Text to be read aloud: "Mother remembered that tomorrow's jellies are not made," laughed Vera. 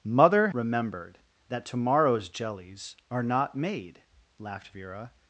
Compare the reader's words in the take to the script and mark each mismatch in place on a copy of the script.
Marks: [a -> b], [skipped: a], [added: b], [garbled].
"Mother remembered that tomorrow's jellies are not made," laughed Vera.